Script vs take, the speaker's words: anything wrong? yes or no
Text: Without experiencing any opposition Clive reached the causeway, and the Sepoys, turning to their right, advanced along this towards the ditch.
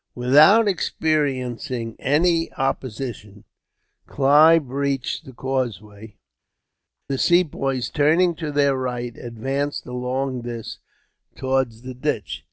yes